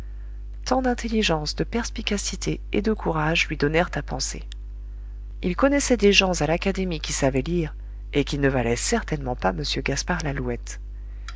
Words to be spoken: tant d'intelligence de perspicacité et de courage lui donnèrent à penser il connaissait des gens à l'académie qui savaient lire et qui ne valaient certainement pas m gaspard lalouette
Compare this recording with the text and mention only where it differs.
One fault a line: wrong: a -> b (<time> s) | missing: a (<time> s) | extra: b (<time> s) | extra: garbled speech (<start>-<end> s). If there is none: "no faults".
no faults